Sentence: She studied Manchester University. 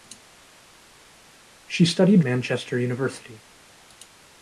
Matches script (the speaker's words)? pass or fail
pass